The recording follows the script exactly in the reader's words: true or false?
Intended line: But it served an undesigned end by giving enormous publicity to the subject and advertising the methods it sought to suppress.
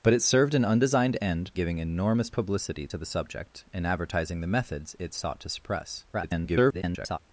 false